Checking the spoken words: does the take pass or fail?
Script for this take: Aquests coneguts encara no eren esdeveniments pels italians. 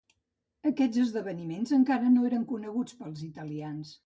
fail